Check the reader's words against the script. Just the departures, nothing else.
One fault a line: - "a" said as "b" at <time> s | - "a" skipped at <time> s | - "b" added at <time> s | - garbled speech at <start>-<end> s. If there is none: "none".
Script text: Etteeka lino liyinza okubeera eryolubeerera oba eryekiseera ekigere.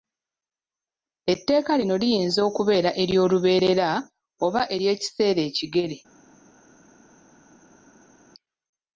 none